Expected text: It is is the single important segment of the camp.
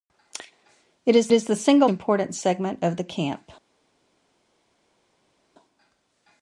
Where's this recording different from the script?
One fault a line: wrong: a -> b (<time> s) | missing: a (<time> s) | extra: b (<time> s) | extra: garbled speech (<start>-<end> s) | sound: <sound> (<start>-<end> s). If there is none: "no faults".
no faults